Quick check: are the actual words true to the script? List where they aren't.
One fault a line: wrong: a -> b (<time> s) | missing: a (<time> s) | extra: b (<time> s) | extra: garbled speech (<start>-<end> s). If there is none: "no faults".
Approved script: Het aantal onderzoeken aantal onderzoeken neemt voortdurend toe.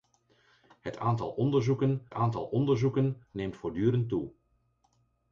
no faults